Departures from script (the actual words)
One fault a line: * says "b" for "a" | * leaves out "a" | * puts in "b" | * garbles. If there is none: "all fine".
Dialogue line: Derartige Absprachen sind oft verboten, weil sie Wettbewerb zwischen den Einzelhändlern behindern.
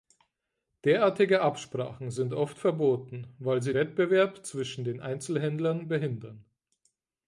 all fine